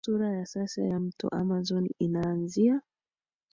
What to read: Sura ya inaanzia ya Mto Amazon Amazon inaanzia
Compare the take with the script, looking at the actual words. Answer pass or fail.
fail